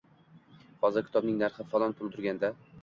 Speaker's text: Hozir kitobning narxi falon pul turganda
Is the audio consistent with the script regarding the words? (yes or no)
yes